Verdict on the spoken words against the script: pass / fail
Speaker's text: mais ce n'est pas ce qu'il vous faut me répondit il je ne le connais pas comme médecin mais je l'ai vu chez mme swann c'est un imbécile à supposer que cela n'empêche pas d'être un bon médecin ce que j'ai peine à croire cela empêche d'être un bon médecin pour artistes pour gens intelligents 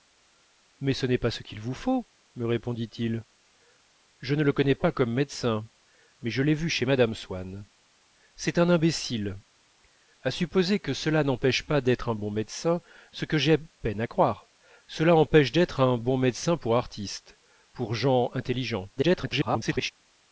fail